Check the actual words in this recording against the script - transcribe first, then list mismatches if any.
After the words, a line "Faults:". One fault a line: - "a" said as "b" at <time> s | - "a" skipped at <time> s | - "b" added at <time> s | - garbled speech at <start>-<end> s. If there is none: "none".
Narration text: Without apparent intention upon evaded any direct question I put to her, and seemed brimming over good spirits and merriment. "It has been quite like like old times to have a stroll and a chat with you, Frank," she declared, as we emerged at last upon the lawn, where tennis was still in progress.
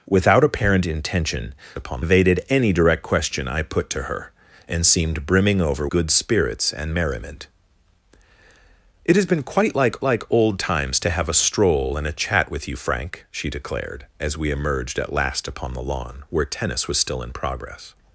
Without apparent intention upon evaded any direct question I put to her, and seemed brimming over good spirits and merriment. "It has been quite like like old times to have a stroll and a chat with you, Frank," she declared, as we emerged at last upon the lawn, where tennis was still in progress.
Faults:
none